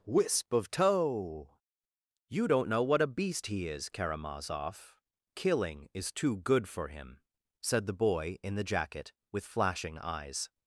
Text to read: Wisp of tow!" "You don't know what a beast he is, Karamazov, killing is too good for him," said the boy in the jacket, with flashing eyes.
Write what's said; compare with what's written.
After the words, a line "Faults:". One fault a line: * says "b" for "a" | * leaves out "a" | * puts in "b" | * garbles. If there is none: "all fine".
Wisp of tow!" "You don't know what a beast he is, Karamazov, killing is too good for him," said the boy in the jacket, with flashing eyes.
Faults:
all fine